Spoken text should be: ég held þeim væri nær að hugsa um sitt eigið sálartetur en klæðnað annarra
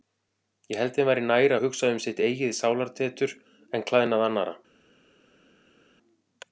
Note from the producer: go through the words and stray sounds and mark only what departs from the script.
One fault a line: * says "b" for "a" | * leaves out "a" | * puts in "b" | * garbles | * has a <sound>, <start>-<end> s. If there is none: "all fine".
all fine